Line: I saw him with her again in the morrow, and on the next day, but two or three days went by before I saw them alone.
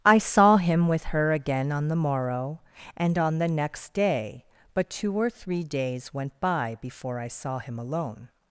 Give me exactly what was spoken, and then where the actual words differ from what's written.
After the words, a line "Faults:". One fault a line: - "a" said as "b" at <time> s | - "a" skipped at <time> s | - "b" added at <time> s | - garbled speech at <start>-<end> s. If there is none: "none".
I saw him with her again on the morrow, and on the next day, but two or three days went by before I saw him alone.
Faults:
- "in" said as "on" at 1.7 s
- "them" said as "him" at 7.6 s